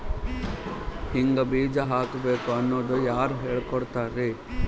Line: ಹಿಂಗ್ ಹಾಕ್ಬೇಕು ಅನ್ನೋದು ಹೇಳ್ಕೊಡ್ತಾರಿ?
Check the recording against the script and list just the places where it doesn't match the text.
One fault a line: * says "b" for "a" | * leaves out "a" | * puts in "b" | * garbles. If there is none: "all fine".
* puts in "ಬೀಜ"
* puts in "ಯಾರ್"